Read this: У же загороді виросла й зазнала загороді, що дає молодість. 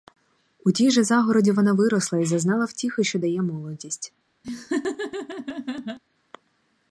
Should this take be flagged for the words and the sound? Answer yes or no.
yes